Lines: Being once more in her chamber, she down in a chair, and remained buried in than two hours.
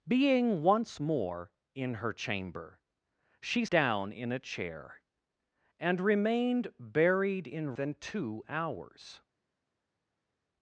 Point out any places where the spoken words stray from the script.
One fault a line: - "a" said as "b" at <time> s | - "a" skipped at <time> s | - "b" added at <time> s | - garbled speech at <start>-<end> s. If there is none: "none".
none